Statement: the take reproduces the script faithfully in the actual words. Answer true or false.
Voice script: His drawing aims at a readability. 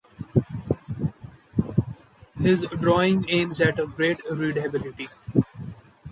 false